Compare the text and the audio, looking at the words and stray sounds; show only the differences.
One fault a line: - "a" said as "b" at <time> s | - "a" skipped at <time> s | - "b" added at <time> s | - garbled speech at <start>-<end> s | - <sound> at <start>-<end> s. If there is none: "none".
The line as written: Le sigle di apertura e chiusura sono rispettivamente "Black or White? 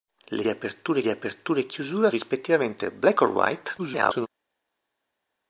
- "sigle" said as "apertura" at 0.5 s
- "sono" skipped at 2.1 s
- garbled speech at 3.8-4.3 s